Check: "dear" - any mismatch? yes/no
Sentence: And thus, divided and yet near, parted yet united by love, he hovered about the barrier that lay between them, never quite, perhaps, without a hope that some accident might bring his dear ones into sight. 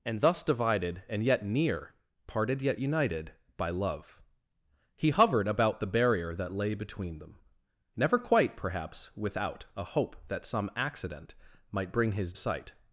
yes